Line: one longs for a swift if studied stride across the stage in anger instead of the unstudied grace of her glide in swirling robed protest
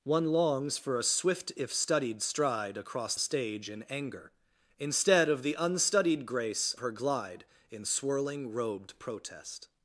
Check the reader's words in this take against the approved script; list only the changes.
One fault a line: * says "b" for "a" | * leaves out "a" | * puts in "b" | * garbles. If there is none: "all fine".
* leaves out "the"
* leaves out "of"